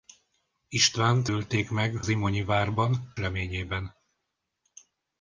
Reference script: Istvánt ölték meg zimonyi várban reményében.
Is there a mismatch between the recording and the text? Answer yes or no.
no